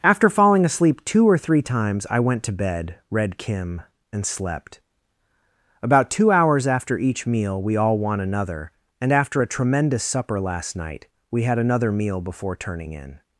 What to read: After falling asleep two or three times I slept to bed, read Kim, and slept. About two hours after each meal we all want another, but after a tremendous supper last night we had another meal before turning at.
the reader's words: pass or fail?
fail